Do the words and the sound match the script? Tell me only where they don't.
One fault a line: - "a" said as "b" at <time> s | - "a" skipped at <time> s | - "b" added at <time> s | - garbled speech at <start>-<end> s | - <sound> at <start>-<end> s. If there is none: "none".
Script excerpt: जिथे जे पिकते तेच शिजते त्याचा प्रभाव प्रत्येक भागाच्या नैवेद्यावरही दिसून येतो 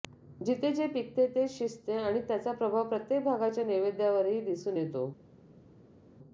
- "आणि" added at 2.0 s